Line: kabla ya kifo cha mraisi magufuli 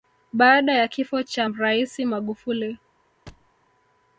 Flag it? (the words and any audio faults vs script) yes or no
yes